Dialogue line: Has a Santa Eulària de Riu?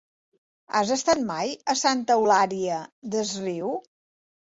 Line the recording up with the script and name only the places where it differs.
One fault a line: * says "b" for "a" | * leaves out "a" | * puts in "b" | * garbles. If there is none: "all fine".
* puts in "estat mai"
* says "des" for "de"